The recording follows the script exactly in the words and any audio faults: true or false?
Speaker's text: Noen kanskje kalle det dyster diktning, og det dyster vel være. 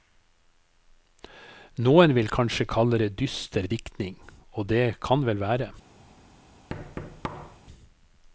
false